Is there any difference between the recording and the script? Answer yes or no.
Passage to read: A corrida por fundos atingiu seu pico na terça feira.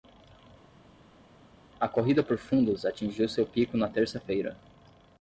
no